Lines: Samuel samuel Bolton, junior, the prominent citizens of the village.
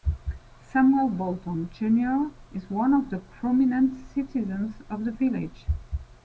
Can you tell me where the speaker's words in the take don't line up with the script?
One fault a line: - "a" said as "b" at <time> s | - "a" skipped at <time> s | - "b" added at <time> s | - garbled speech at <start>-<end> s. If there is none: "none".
- "samuel" skipped at 1.1 s
- "is one of" added at 2.5 s